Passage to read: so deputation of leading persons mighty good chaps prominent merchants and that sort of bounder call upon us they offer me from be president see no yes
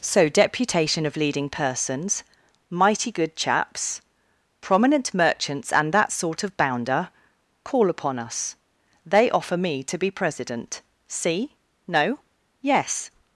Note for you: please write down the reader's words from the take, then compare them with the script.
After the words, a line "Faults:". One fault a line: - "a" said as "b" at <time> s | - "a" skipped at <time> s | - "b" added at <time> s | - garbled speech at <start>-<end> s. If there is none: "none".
so deputation of leading persons mighty good chaps prominent merchants and that sort of bounder call upon us they offer me to be president see no yes
Faults:
- "from" said as "to" at 9.8 s